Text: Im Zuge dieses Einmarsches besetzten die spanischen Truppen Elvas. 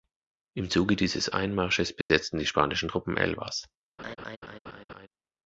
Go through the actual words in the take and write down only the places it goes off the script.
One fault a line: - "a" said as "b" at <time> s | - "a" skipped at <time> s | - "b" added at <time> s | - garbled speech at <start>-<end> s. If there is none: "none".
none